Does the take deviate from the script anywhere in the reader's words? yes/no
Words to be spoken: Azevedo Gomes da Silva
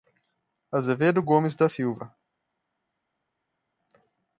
no